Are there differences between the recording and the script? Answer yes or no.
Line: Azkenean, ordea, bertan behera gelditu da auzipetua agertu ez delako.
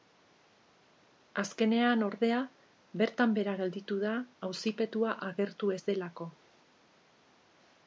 no